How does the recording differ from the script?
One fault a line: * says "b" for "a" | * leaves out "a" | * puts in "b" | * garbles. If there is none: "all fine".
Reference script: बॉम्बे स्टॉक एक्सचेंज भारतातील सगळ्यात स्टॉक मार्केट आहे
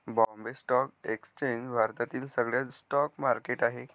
all fine